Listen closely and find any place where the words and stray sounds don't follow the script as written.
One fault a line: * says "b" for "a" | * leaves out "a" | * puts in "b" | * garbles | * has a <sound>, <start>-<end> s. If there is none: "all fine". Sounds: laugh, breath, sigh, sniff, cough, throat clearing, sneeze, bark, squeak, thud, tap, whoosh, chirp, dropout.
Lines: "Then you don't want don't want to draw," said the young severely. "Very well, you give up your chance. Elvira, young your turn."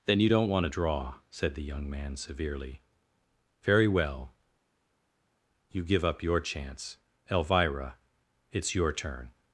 * leaves out "don't want"
* puts in "man"
* says "it's" for "young"